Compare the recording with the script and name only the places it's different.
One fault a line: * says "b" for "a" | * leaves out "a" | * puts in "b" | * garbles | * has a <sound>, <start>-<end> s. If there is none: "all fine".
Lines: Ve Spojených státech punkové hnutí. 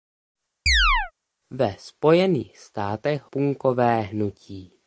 * has a chirp, 0.7-1.1 s